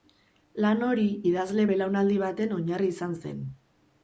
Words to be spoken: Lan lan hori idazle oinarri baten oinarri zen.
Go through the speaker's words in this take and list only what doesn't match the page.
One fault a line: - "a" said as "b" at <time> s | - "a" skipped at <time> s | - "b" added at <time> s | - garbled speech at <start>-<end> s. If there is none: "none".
- "lan" skipped at 0.8 s
- "oinarri" said as "belaunaldi" at 1.7 s
- "izan" added at 2.9 s